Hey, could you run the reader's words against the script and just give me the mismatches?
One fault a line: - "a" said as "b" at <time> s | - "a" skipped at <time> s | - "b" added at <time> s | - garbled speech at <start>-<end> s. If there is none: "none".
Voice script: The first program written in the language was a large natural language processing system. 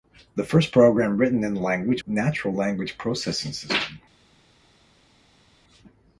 - "was a large" skipped at 2.0 s